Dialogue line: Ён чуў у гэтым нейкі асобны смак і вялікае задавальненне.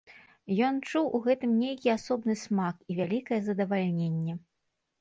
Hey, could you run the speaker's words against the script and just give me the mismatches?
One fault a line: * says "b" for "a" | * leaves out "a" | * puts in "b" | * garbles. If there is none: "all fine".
all fine